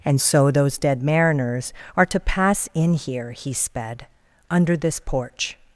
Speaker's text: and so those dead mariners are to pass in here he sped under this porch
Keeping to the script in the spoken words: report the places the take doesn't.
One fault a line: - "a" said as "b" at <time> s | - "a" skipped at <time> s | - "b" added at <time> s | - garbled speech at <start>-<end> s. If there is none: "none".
none